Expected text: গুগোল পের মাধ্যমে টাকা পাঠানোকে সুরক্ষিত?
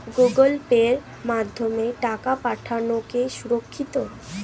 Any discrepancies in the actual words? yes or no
no